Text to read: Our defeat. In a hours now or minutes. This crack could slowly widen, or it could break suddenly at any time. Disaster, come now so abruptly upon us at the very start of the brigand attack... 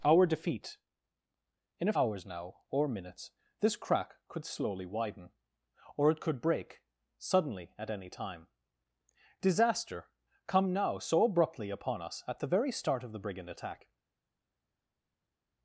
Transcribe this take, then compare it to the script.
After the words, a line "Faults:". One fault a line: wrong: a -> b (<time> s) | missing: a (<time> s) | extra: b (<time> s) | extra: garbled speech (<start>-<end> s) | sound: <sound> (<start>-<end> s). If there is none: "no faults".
Our defeat. In a hours now or minutes. This crack could slowly widen, or it could break suddenly at any time. Disaster, come now so abruptly upon us at the very start of the brigand attack...
Faults:
no faults